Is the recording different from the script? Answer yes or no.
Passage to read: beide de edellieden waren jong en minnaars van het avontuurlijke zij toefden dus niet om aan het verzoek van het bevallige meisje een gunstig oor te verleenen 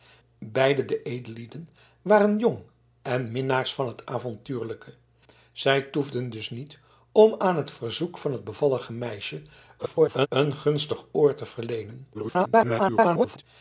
yes